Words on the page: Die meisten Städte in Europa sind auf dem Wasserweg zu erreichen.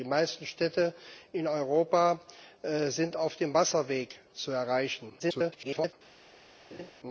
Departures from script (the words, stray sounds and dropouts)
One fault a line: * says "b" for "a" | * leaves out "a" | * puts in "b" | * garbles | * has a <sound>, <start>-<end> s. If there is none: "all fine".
* garbles
* has a laugh, 6.7-6.9 s